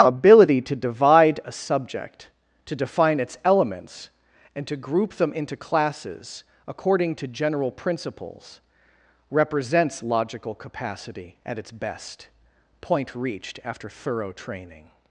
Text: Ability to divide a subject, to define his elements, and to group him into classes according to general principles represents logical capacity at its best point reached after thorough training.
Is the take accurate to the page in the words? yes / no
no